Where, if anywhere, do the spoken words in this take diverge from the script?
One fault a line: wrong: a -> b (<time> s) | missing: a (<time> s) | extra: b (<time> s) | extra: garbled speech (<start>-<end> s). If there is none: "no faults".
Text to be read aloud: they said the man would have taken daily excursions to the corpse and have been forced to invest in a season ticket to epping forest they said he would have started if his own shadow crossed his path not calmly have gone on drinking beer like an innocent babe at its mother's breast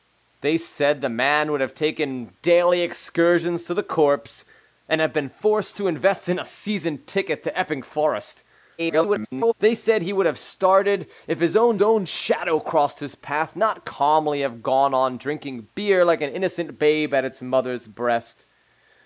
extra: garbled speech (8.8-9.5 s)
extra: own (11.8 s)